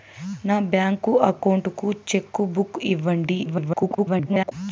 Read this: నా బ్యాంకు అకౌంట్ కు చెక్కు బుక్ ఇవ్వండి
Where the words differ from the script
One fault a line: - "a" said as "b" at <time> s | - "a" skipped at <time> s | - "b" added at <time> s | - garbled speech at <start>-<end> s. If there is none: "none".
- garbled speech at 3.4-4.5 s